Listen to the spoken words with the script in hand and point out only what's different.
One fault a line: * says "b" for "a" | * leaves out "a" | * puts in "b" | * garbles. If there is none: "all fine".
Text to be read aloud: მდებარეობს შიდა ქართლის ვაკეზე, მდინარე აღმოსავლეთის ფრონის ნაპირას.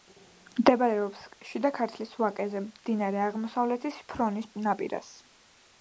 all fine